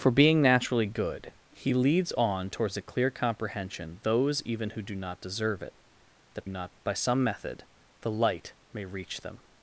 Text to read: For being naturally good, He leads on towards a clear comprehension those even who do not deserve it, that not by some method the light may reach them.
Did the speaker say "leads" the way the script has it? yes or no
yes